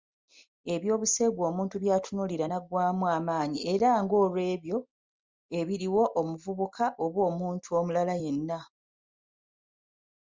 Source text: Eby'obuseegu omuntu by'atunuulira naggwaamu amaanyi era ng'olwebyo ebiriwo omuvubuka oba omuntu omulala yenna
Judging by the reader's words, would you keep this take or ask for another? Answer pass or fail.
pass